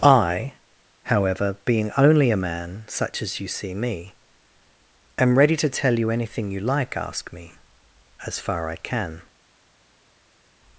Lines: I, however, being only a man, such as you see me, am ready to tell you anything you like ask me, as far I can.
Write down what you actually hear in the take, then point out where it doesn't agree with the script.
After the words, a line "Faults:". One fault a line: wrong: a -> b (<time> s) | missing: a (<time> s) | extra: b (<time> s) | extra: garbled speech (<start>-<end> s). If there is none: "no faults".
I, however, being only a man, such as you see me, am ready to tell you anything you like ask me, as far I can.
Faults:
no faults